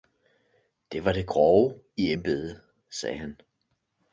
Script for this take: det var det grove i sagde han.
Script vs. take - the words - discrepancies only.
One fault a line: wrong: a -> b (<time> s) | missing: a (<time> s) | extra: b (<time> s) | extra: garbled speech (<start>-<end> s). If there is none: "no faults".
extra: embedet (2.1 s)